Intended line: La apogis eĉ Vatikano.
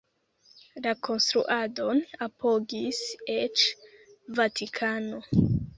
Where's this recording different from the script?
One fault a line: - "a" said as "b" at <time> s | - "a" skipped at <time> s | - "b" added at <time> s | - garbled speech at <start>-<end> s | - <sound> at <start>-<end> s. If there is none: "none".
- "konstruadon" added at 1.1 s